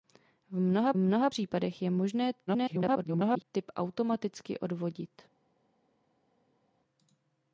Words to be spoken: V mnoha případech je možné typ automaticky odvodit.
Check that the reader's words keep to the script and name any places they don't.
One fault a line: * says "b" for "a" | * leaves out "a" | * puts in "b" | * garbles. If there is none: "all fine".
* puts in "mnoha"
* garbles